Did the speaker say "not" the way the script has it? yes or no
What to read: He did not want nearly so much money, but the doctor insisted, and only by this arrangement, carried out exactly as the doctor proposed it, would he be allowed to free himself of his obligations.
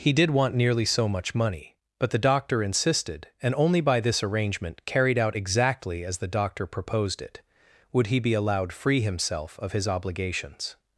no